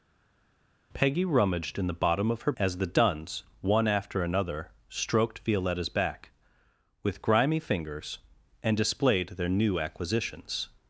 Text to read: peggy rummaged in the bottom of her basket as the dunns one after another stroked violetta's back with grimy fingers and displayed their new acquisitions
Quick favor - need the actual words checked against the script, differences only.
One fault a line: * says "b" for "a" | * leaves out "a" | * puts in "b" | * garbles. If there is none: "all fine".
* leaves out "basket"